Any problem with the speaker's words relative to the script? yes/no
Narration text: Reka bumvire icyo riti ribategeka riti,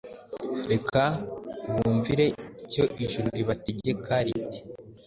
yes